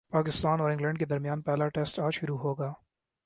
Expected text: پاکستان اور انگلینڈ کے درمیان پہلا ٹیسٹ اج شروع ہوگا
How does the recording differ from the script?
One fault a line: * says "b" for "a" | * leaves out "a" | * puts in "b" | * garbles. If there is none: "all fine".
all fine